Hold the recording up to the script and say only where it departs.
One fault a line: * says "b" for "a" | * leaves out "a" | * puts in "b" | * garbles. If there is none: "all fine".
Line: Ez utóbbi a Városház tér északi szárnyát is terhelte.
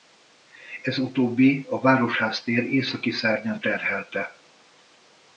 * leaves out "is"